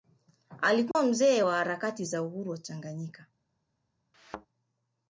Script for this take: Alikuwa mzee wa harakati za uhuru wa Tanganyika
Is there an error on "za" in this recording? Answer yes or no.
no